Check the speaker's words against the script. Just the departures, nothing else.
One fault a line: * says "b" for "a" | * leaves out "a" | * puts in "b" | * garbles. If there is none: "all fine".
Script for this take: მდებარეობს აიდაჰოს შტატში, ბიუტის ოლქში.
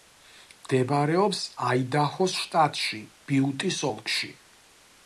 all fine